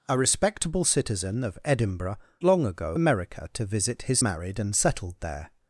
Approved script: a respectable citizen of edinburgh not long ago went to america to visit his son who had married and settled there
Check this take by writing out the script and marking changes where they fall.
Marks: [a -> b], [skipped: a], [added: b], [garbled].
a respectable citizen of edinburgh [skipped: not] long ago [skipped: went to] america to visit his [skipped: son who had] married and settled there